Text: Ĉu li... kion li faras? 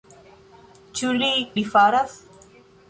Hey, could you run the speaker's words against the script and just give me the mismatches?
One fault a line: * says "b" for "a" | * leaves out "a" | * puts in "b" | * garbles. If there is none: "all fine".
* leaves out "kion"